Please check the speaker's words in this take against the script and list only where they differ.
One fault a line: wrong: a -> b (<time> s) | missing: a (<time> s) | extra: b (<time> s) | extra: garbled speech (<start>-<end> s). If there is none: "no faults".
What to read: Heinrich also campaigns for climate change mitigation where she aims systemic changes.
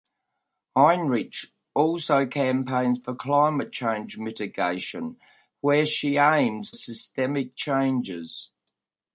no faults